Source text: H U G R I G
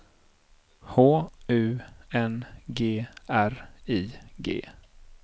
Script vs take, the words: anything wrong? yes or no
yes